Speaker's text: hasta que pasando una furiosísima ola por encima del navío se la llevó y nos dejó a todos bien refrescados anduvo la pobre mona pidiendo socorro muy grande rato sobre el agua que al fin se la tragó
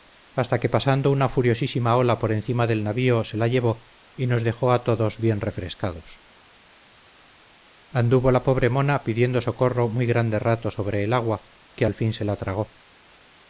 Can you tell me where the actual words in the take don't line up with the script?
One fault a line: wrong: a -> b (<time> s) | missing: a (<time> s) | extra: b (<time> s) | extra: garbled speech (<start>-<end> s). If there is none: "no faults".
no faults